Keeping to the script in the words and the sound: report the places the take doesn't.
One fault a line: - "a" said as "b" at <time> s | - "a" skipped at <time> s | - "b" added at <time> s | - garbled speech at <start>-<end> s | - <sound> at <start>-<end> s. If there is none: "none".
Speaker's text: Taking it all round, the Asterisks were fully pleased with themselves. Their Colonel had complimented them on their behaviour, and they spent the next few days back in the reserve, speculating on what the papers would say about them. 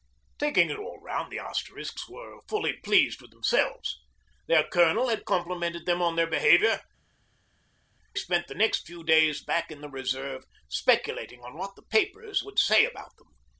- "and they" skipped at 6.8 s